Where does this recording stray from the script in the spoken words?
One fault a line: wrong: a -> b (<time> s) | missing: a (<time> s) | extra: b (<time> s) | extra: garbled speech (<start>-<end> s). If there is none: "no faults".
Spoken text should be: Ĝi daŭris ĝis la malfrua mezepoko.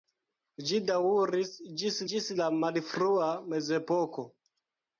extra: ĝis (2.1 s)